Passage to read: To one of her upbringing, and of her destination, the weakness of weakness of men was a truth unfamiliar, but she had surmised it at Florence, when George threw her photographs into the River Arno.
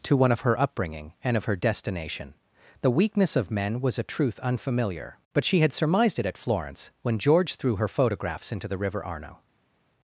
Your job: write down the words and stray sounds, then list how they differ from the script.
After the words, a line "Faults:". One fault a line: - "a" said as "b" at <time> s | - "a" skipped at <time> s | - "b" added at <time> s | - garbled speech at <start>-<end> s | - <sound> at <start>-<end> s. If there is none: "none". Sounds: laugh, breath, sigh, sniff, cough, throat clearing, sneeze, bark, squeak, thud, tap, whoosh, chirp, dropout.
To one of her upbringing, and of her destination, the weakness of men was a truth unfamiliar, but she had surmised it at Florence, when George threw her photographs into the River Arno.
Faults:
- "weakness of" skipped at 3.5 s